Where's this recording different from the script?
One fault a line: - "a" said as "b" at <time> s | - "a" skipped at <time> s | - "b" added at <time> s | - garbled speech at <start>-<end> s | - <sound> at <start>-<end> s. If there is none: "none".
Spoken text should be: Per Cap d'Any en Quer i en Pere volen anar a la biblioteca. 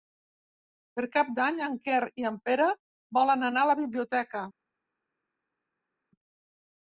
none